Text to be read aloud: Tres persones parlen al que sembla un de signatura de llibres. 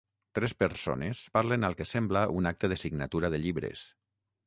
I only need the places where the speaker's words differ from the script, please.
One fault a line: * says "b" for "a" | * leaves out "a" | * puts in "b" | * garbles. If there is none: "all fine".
* puts in "acte"